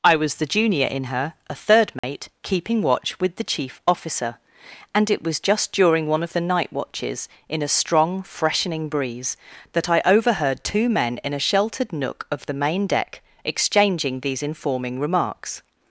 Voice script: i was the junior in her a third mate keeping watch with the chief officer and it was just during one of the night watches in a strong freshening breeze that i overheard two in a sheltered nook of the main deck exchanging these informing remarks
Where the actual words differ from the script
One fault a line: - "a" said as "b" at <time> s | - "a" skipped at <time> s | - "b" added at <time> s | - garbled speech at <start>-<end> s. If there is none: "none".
- "men" added at 10.9 s